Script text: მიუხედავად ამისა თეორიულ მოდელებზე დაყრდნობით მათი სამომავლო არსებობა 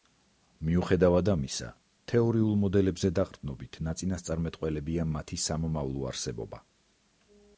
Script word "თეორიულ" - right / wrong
right